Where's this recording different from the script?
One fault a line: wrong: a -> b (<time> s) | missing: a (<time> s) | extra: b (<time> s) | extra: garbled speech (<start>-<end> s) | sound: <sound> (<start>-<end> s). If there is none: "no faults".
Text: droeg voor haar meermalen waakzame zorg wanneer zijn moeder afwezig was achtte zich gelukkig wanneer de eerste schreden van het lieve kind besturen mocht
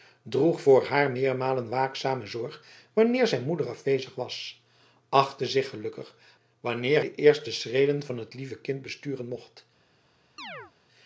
sound: chirp (10.4-10.7 s)